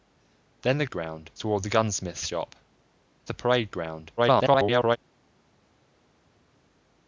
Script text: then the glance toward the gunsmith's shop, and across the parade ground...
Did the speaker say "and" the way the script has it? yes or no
no